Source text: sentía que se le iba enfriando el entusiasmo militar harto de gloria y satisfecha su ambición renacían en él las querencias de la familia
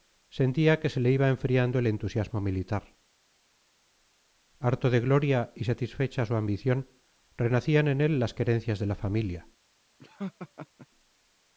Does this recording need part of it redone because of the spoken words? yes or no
no